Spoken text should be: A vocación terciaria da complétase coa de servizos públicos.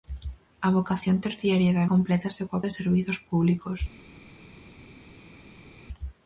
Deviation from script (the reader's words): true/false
false